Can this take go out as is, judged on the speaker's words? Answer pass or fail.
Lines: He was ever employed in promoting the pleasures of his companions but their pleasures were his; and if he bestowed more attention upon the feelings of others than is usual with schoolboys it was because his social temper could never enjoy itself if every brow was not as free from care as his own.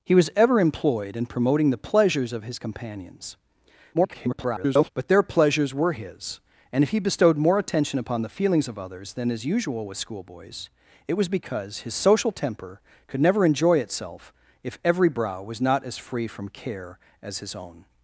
fail